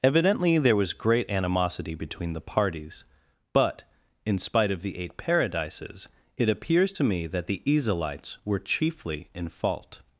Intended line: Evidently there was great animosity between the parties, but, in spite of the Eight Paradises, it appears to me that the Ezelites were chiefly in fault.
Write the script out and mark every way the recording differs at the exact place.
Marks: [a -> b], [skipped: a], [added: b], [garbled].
Evidently there was great animosity between the parties, but, in spite of the Eight Paradises, it appears to me that the Ezelites were chiefly in fault.